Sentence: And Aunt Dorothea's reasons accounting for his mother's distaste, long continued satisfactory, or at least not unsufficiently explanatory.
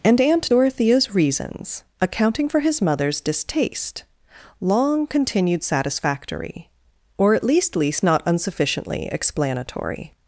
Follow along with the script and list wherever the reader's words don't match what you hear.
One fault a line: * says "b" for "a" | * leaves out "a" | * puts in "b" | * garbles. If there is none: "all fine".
* puts in "least"